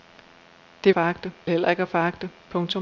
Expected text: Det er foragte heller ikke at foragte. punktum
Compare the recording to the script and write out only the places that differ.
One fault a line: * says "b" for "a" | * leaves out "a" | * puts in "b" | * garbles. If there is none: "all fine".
all fine